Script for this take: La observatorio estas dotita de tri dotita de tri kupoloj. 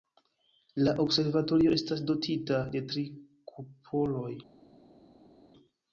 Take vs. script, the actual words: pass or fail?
fail